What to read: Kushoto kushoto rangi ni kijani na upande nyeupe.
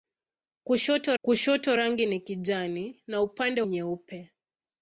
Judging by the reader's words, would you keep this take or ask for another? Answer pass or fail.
pass